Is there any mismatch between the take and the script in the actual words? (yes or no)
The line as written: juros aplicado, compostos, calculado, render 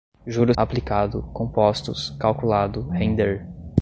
no